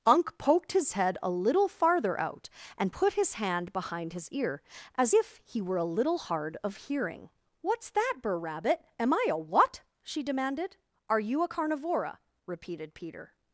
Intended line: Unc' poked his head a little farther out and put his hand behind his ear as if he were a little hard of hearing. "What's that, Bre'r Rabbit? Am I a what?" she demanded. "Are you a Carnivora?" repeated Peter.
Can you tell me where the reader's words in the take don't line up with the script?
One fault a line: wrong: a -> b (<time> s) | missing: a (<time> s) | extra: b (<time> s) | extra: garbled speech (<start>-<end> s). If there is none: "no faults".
no faults